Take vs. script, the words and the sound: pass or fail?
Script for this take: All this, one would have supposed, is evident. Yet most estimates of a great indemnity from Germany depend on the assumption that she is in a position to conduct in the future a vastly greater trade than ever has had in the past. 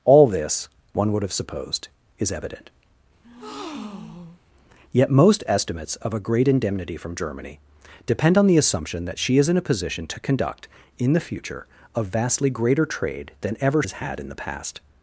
fail